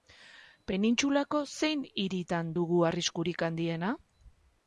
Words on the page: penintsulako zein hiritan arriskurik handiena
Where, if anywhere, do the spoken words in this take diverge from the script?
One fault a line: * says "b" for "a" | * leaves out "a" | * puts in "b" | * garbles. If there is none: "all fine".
* puts in "dugu"